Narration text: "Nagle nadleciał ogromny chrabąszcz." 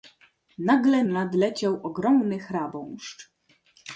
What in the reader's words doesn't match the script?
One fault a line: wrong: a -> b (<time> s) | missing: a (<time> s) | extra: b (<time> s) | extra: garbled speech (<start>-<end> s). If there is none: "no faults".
no faults